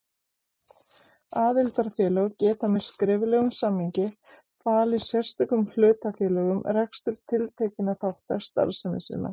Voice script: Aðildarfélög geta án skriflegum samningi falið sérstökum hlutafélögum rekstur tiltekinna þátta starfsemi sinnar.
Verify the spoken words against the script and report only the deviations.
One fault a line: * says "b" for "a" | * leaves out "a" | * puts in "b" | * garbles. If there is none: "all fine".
* says "með" for "án"